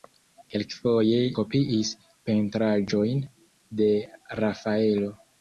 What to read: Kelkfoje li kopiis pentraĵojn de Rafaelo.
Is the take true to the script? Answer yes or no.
no